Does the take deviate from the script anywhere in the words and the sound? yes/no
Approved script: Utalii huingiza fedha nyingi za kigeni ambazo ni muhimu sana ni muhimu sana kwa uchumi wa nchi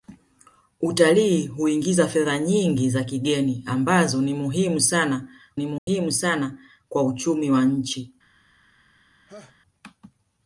yes